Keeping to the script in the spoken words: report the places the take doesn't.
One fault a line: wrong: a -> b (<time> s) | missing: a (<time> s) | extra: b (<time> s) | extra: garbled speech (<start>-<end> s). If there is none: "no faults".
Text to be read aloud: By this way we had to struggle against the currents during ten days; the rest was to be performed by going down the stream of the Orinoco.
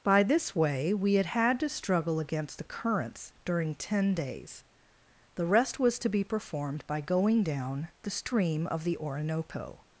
extra: had (1.3 s)